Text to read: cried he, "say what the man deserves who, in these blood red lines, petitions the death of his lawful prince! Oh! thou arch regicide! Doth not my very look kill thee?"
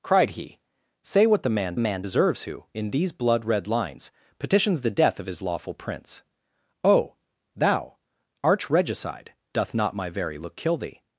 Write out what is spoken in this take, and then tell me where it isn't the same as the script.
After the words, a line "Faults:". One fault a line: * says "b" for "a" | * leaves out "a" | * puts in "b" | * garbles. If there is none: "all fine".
cried he, "say what the man man deserves who, in these blood red lines, petitions the death of his lawful prince! Oh! thou arch regicide! Doth not my very look kill thee?"
Faults:
* puts in "man"